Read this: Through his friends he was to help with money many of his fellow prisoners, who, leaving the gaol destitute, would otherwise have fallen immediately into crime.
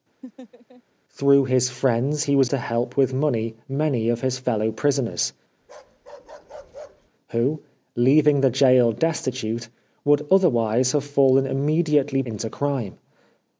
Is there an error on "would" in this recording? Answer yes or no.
no